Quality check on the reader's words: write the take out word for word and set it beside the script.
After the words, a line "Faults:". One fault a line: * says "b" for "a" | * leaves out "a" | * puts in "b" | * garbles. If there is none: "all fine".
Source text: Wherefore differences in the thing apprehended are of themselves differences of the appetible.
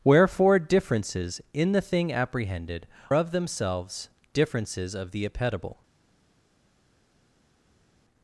Wherefore differences in the thing apprehended of themselves differences of the appetible.
Faults:
* leaves out "are"